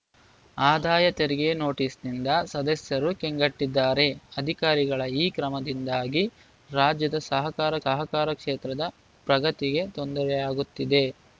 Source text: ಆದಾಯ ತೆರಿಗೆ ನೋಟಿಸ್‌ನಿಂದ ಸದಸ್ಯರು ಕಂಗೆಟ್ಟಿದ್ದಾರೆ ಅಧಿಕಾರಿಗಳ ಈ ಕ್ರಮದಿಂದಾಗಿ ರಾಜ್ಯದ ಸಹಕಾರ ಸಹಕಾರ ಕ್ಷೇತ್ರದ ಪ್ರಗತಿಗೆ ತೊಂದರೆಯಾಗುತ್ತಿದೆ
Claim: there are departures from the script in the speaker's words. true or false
false